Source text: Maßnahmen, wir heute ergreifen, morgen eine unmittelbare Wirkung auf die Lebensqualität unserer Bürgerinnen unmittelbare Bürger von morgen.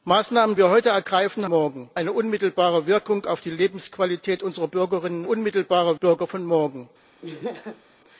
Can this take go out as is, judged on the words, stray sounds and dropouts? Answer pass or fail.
fail